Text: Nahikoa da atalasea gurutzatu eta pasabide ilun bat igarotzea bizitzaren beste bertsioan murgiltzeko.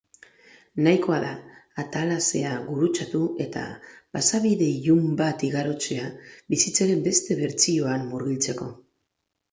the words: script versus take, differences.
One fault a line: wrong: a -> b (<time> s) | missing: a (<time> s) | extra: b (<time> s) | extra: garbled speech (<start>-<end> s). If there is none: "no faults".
no faults